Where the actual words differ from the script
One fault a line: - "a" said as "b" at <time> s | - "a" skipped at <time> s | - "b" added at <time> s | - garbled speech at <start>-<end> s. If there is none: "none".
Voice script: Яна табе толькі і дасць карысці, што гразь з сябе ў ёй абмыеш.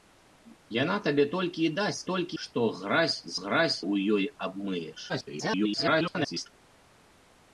- "карысці" said as "толькі" at 2.1 s
- "сябе" said as "гразь" at 3.4 s
- garbled speech at 5.1-6.5 s